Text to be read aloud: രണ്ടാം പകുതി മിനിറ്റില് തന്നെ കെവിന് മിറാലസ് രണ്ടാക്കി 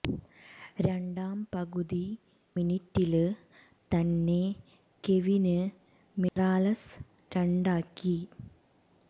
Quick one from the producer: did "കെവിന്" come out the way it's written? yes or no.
yes